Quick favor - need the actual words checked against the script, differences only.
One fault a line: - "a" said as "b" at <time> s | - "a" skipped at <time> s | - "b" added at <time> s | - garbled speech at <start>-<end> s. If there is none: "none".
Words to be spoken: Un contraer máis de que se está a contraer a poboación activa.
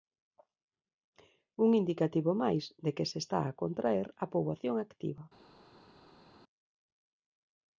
- "contraer" said as "indicativo" at 1.8 s